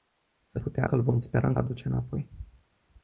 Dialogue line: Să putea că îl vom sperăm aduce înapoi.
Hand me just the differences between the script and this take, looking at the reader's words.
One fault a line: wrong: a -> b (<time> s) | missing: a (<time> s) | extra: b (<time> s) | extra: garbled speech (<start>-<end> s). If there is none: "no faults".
no faults